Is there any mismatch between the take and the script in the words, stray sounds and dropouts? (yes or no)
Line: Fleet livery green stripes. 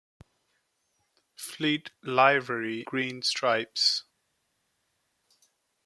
no